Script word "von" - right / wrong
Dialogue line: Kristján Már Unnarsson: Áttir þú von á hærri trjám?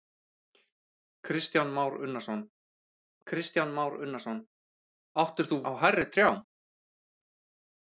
wrong